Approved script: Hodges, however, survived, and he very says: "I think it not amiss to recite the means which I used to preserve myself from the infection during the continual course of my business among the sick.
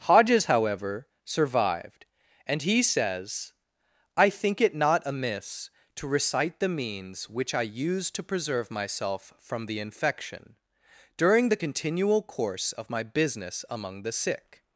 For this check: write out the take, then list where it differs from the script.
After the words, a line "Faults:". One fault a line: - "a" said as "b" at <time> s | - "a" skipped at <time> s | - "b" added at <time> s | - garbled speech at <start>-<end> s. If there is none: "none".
Hodges, however, survived, and he says: "I think it not amiss to recite the means which I used to preserve myself from the infection during the continual course of my business among the sick.
Faults:
- "very" skipped at 2.8 s